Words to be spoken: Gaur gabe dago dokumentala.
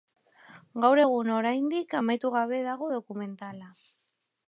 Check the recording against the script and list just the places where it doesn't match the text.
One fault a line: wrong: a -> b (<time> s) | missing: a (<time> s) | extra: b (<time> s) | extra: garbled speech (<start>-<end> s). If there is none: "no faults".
extra: egun oraindik amaitu (1.0 s)